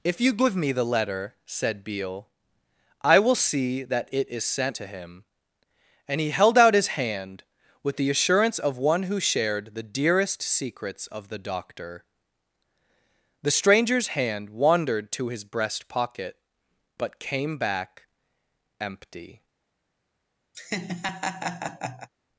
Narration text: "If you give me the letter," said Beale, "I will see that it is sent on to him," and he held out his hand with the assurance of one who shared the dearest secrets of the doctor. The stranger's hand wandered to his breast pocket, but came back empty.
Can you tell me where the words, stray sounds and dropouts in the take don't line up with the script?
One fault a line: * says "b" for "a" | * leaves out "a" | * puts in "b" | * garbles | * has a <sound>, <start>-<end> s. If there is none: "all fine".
* leaves out "on"
* has a laugh, 20.5-22.1 s